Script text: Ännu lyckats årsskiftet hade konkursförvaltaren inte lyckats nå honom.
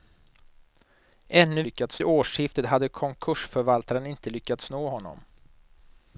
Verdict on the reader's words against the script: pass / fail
pass